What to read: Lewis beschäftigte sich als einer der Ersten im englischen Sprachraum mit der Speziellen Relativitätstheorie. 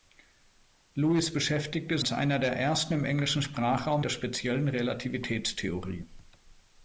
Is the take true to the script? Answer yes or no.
no